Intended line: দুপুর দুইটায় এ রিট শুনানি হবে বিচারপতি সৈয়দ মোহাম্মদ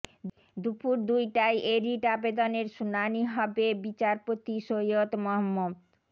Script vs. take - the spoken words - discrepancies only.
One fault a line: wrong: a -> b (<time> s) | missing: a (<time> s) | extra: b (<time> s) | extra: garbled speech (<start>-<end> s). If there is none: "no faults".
extra: আবেদনের (2.1 s)